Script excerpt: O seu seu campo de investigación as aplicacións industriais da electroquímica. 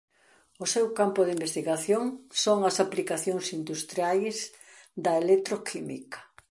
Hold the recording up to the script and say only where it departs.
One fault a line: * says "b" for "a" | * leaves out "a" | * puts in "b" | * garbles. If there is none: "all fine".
* leaves out "seu"
* puts in "son"